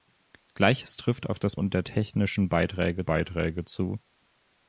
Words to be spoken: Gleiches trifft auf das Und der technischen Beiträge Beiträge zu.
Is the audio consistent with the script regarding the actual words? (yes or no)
yes